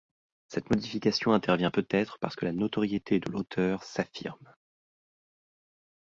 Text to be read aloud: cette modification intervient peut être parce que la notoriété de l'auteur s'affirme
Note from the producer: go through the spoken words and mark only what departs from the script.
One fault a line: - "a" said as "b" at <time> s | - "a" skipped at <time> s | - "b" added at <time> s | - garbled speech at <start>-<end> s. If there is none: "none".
none